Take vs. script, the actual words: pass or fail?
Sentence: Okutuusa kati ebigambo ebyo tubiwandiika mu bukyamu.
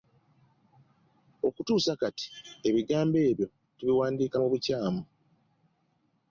pass